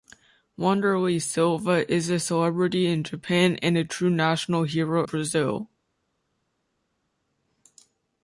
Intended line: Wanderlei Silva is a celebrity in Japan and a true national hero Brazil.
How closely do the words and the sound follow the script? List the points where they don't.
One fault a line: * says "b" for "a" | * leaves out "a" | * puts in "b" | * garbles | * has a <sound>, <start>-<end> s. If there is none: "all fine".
all fine